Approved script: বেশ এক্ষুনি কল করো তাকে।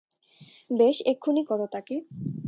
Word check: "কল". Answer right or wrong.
wrong